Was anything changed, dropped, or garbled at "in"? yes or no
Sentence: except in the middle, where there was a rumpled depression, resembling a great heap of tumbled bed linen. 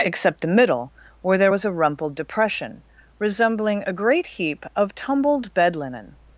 yes